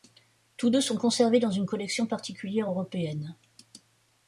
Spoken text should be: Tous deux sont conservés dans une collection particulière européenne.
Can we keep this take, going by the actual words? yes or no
yes